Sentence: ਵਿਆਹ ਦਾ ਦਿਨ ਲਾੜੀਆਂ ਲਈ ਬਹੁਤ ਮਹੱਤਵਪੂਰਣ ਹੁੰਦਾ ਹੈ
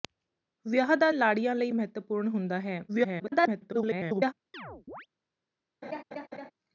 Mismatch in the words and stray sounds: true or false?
true